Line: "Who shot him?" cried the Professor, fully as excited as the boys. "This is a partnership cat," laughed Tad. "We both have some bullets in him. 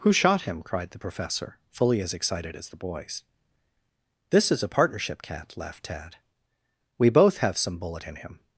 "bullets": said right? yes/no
no